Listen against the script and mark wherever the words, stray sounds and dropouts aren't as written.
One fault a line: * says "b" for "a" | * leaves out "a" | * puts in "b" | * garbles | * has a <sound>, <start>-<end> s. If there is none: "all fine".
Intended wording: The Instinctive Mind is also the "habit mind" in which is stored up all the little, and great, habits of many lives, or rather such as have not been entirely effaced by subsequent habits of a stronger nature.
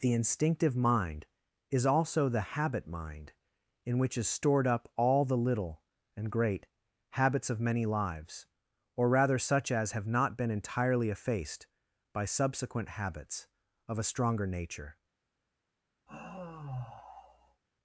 * has a sigh, 16.1-17.6 s